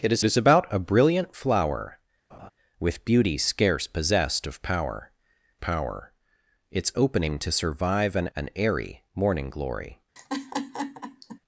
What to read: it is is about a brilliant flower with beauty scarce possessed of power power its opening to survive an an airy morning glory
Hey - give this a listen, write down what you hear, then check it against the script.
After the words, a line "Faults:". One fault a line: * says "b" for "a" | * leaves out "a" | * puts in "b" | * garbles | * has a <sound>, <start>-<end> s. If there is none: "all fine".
it is is about a brilliant flower with beauty scarce possessed of power power its opening to survive an an airy morning glory
Faults:
* has a laugh, 2.3-2.5 s
* has a laugh, 10.2-11.4 s